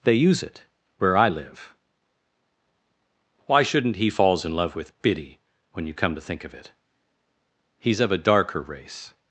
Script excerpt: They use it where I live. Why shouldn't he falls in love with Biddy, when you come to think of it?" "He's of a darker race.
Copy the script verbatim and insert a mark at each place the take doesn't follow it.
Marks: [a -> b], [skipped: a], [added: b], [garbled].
They use it where I live. Why shouldn't he falls in love with Biddy, when you come to think of it?" "He's of a darker race.